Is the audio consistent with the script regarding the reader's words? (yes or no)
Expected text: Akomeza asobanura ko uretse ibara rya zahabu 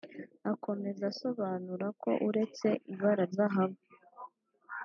no